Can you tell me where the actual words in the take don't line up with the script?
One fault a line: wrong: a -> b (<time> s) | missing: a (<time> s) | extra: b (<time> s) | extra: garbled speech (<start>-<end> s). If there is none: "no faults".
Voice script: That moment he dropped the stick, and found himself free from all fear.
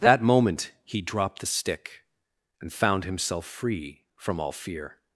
no faults